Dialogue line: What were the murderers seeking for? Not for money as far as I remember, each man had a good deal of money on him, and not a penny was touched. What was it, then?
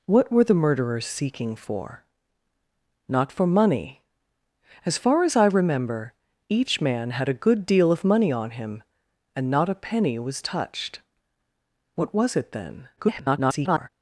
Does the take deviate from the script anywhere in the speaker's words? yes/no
yes